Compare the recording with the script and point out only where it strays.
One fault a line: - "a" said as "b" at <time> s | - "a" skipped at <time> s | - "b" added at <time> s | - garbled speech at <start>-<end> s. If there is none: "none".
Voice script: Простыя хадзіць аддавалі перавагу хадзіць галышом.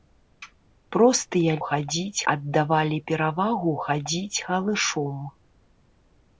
none